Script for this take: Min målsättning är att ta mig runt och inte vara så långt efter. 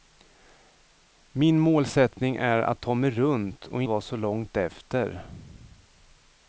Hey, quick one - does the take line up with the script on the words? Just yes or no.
no